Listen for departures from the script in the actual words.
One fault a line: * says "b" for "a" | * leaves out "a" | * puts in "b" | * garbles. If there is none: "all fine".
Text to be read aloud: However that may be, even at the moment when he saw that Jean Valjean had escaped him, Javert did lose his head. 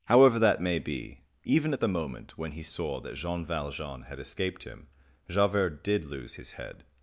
all fine